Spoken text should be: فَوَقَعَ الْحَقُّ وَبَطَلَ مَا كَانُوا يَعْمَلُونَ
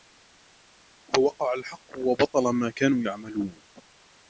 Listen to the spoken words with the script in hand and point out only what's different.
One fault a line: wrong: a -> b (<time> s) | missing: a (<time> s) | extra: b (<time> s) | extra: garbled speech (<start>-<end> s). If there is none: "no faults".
no faults